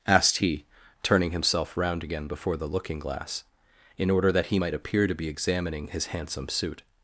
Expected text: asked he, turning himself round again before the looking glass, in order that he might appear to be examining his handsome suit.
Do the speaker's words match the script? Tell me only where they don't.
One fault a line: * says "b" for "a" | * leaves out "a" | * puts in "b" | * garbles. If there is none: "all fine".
all fine